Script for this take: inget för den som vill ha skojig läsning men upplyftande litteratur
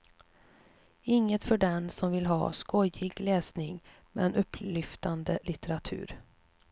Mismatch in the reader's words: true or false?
false